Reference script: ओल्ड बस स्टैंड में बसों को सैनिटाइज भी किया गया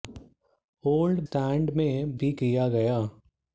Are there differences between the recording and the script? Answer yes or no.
yes